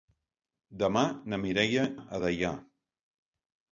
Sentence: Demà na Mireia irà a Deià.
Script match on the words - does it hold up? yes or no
no